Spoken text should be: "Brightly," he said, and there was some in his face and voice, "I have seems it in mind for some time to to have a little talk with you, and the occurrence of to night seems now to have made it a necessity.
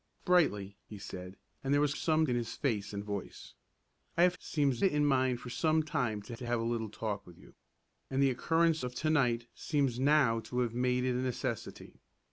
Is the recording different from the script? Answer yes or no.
no